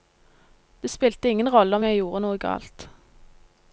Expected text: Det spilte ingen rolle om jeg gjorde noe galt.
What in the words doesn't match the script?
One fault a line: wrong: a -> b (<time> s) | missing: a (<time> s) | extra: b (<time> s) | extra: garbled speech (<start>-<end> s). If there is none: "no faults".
no faults